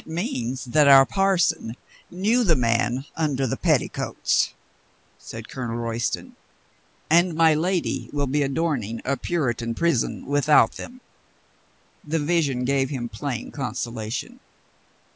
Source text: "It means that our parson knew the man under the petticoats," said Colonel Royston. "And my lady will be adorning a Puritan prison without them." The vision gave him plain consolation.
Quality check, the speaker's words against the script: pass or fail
pass